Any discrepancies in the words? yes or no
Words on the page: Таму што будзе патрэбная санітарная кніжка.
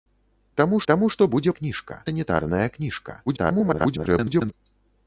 yes